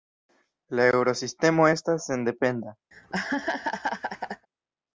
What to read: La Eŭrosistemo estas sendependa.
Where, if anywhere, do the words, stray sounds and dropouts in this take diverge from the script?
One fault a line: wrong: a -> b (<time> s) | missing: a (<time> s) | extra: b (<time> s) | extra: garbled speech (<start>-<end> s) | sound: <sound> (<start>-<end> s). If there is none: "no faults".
sound: laugh (2.9-4.5 s)